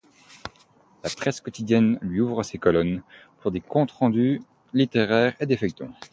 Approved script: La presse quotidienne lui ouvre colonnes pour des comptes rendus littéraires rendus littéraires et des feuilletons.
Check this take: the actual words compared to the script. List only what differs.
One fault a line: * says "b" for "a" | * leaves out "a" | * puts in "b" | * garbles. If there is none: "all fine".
* puts in "ses"
* leaves out "rendus littéraires"